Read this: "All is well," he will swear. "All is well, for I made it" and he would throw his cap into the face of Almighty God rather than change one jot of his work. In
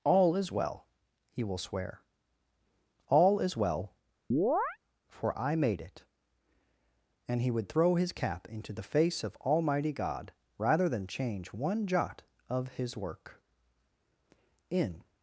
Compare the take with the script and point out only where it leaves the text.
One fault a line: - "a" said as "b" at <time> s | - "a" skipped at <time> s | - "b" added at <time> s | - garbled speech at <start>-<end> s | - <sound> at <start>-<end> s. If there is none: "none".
- chirp at 4.3-4.8 s